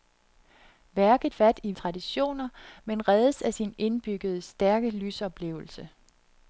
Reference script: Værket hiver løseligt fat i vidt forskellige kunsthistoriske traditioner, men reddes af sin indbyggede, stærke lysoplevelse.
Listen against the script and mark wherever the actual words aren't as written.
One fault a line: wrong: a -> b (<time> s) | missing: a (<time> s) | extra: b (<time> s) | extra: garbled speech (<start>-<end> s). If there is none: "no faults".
missing: hiver løseligt (1.4 s)
missing: vidt forskellige kunsthistoriske (1.7 s)